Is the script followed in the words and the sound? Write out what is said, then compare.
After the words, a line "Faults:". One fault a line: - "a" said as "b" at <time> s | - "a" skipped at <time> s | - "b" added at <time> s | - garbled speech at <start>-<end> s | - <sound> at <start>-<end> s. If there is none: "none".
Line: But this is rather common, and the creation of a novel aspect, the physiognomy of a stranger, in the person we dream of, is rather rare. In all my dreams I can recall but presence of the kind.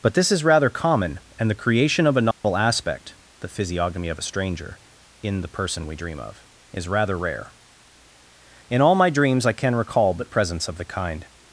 But this is rather common, and the creation of a novel aspect, the physiognomy of a stranger, in the person we dream of, is rather rare. In all my dreams I can recall but presence of the kind.
Faults:
- dropout at 2.3-2.4 s